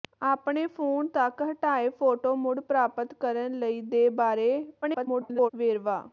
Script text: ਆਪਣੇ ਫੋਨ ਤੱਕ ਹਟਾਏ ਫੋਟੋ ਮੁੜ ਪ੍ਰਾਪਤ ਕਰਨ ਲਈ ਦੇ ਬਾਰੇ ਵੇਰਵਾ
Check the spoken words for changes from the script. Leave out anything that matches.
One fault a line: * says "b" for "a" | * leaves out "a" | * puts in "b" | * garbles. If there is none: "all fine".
* garbles